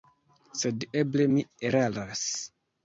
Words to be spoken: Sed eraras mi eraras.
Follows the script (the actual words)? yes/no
no